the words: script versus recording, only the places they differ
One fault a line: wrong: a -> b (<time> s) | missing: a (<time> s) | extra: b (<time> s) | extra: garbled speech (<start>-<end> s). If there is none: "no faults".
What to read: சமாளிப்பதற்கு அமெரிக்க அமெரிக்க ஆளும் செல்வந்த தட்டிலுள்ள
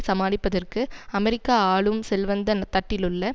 missing: அமெரிக்க (1.5 s)